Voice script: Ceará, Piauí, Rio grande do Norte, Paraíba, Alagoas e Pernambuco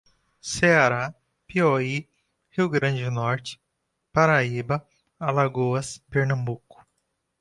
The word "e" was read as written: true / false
false